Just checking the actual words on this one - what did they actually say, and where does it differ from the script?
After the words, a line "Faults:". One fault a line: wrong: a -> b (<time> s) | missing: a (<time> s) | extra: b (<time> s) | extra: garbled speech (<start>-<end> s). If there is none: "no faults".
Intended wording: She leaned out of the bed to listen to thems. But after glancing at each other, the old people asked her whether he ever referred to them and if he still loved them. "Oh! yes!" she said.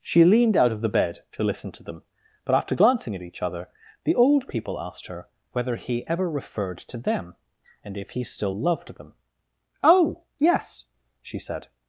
She leaned out of the bed to listen to them. But after glancing at each other, the old people asked her whether he ever referred to them and if he still loved them. "Oh! yes!" she said.
Faults:
wrong: thems -> them (1.8 s)